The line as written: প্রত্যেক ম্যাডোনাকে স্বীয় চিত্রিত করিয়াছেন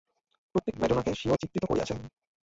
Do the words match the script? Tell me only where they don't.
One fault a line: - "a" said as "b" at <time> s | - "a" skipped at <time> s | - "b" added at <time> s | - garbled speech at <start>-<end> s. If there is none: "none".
none